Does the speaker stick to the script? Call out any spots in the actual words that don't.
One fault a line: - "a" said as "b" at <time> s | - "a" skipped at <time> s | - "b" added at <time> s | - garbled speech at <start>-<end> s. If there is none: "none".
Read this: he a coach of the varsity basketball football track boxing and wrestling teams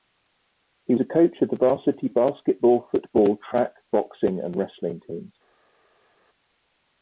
none